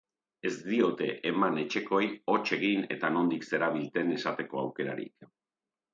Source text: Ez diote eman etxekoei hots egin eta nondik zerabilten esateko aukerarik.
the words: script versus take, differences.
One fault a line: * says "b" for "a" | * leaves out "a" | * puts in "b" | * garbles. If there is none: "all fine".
all fine